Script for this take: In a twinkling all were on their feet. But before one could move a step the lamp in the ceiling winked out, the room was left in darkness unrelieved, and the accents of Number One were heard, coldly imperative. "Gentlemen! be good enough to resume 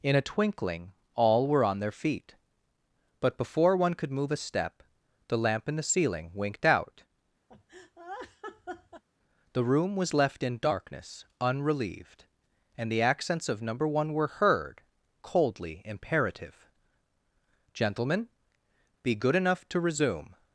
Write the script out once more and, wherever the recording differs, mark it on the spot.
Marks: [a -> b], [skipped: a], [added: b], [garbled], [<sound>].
In a twinkling all were on their feet. But before one could move a step the lamp in the ceiling winked out, [laugh] the room was left in darkness unrelieved, and the accents of Number One were heard, coldly imperative. "Gentlemen! be good enough to resume